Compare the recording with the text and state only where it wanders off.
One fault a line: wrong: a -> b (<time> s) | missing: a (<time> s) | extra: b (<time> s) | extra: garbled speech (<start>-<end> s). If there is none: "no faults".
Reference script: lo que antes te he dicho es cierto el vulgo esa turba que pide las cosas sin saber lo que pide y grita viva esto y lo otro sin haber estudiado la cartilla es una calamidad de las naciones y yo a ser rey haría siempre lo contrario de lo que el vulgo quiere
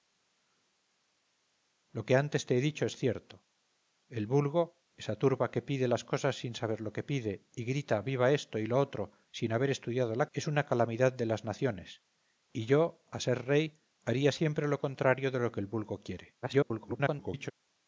missing: cartilla (10.3 s)
extra: garbled speech (16.4-17.5 s)